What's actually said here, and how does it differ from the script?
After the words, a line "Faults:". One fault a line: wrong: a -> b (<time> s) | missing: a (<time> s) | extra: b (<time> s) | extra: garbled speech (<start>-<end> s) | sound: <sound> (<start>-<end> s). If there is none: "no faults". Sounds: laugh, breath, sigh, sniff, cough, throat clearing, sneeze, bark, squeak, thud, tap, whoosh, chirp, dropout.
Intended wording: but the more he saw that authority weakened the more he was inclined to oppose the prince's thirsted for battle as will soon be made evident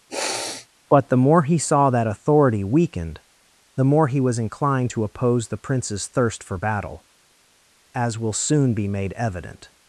but the more he saw that authority weakened the more he was inclined to oppose the prince's thirst for battle as will soon be made evident
Faults:
sound: sniff (0.1-0.7 s)
wrong: thirsted -> thirst (6.1 s)